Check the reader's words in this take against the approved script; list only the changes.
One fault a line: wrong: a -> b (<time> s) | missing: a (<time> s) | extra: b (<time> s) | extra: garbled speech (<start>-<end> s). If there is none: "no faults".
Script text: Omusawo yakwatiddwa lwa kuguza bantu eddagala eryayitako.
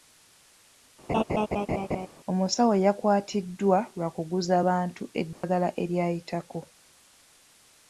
no faults